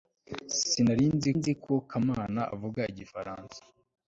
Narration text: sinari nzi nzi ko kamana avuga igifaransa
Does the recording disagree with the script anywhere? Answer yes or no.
no